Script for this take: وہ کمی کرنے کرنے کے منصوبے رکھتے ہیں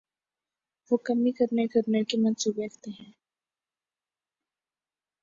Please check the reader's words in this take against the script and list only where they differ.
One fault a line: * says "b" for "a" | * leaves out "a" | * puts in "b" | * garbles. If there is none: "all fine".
all fine